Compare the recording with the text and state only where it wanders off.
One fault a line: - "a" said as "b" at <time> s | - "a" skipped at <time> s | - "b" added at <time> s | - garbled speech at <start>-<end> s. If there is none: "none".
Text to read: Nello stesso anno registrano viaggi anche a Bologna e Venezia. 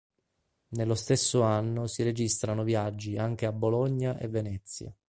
- "si" added at 1.9 s